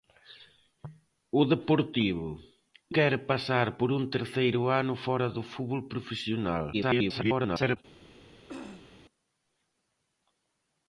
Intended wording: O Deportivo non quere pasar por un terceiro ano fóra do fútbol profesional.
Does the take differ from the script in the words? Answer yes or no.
yes